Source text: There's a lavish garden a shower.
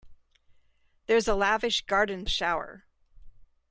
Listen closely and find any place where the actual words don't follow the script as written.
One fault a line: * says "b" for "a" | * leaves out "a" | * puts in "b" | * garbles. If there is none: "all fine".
all fine